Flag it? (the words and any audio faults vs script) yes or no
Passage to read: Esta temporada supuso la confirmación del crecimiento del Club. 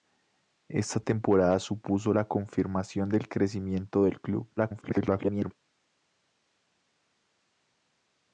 yes